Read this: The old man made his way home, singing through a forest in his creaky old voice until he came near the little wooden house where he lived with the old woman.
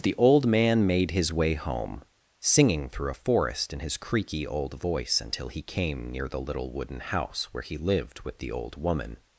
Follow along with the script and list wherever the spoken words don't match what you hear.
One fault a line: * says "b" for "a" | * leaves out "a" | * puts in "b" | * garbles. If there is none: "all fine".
all fine